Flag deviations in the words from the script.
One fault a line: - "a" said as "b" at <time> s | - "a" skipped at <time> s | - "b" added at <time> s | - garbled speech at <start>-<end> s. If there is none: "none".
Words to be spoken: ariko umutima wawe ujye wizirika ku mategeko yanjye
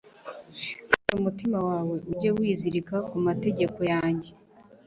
- "ariko" said as "kandi" at 0.9 s